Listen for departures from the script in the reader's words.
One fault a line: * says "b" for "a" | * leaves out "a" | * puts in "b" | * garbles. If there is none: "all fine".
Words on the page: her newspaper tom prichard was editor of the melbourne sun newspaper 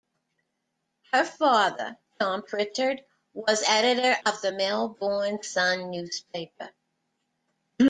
* says "father" for "newspaper"